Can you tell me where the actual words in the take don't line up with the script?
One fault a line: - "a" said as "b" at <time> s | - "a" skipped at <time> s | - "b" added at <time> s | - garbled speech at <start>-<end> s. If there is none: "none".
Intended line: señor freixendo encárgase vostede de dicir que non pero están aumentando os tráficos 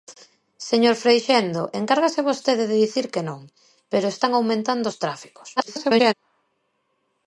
- garbled speech at 5.6-6.1 s